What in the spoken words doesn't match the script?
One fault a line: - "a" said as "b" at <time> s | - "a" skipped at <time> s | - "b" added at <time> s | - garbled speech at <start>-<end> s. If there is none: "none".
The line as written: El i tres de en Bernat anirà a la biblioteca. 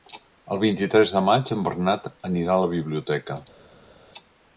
- "vint" added at 0.6 s
- "maig" added at 1.3 s